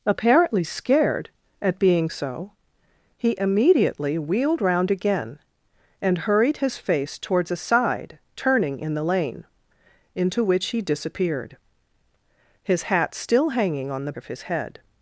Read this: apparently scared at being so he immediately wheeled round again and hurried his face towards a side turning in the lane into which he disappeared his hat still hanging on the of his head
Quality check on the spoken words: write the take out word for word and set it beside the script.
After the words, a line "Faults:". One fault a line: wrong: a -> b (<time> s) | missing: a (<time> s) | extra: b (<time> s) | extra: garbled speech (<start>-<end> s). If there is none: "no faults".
apparently scared at being so he immediately wheeled round again and hurried his face towards a side turning in the lane into which he disappeared his hat still hanging on the of his head
Faults:
no faults